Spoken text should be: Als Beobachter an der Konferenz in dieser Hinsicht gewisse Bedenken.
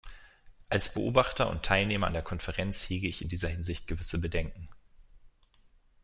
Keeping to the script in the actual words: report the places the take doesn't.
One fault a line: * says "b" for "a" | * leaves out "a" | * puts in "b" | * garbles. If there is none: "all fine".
* puts in "und Teilnehmer"
* puts in "hege ich"